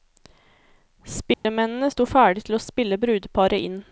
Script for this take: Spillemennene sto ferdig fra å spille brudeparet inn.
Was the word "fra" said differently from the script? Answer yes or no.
yes